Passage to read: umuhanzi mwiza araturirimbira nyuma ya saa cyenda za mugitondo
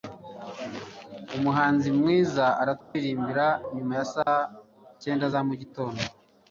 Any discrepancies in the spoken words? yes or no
no